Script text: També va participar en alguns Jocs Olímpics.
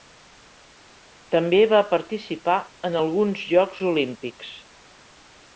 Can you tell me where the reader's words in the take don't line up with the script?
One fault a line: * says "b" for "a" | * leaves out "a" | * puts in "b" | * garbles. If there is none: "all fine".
all fine